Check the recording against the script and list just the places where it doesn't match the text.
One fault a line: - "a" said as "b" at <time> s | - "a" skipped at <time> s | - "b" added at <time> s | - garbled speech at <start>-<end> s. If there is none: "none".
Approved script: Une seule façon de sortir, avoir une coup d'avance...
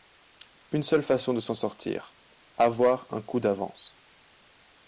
- "s'en" added at 1.4 s
- "une" said as "un" at 3.1 s